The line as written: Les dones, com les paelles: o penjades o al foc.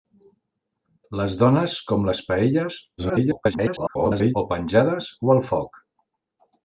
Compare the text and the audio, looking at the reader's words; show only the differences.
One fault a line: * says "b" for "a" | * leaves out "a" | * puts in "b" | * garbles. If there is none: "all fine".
* garbles